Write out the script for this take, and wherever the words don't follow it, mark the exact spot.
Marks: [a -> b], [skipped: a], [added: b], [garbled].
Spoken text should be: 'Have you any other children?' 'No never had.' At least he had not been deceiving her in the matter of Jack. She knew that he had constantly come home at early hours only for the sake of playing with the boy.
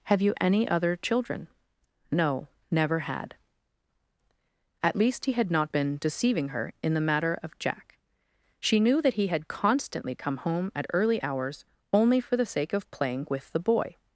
'Have you any other children?' 'No never had.' At least he had not been deceiving her in the matter of Jack. She knew that he had constantly come home at early hours only for the sake of playing with the boy.